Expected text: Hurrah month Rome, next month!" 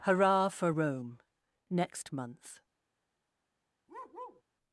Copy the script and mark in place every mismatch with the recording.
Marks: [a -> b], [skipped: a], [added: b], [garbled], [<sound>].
Hurrah [month -> for] Rome, next month!" [bark]